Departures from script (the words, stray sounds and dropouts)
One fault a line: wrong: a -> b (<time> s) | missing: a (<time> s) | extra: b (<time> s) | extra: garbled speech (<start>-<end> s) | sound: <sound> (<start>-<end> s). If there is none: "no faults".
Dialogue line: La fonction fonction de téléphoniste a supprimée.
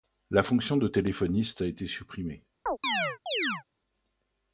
missing: fonction (0.8 s)
extra: été (1.7 s)
sound: chirp (2.7-3.6 s)